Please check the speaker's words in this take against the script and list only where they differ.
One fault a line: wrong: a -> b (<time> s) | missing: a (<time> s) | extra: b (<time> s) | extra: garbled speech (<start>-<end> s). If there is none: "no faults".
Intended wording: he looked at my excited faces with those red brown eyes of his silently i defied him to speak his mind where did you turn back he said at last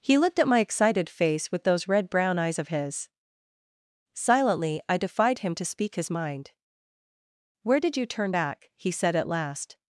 wrong: faces -> face (1.1 s)